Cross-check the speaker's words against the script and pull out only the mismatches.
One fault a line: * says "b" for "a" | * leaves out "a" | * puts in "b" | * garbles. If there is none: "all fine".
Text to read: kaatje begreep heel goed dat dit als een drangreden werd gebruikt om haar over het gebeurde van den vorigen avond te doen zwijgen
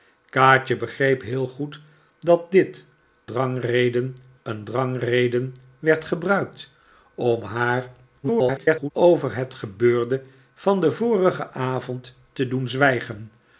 * says "drangreden" for "als"
* garbles